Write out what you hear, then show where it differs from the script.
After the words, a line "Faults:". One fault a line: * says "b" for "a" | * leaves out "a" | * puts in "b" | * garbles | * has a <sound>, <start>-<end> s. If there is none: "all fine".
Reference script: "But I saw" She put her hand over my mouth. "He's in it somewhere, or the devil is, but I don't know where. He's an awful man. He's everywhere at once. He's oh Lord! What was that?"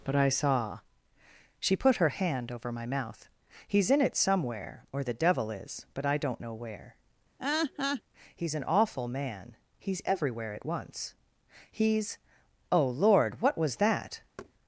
"But I saw" She put her hand over my mouth. "He's in it somewhere, or the devil is, but I don't know where. He's an awful man. He's everywhere at once. He's oh Lord! What was that?"
Faults:
* has a laugh, 7.4-8.0 s
* has a thud, 14.4-14.5 s